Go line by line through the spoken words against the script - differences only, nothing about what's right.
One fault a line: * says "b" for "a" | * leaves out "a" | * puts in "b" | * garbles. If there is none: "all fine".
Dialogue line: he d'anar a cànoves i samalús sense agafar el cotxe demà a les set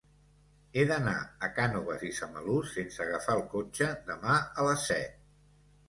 all fine